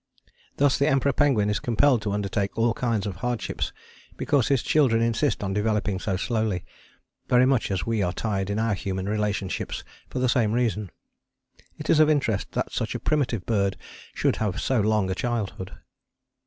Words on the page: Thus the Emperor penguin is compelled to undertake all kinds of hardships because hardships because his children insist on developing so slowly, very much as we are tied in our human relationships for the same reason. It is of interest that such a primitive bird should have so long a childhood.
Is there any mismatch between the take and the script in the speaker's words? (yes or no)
yes